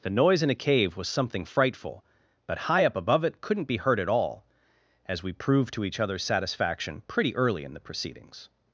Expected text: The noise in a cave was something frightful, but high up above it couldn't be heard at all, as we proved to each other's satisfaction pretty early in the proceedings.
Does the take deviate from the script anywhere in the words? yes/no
no